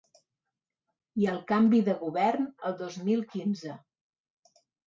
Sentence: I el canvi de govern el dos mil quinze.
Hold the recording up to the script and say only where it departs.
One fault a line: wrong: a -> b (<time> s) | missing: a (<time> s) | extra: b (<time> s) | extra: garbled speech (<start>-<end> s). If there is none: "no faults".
no faults